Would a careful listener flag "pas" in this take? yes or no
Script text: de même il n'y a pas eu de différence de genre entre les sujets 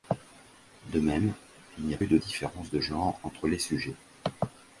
yes